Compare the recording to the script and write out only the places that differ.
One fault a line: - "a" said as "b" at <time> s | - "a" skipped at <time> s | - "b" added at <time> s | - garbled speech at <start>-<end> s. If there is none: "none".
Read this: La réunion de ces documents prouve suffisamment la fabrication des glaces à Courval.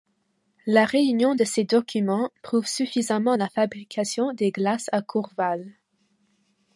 none